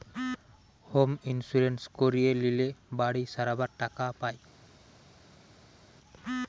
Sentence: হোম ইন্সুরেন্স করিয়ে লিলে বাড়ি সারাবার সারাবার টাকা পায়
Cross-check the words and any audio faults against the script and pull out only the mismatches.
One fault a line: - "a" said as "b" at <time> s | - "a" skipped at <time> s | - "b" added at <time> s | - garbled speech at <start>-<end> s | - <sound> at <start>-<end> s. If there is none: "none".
- "সারাবার" skipped at 3.7 s